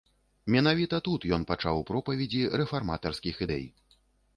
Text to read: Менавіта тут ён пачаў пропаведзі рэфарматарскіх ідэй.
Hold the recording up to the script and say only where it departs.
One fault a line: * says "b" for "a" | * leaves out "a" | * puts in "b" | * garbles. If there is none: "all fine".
all fine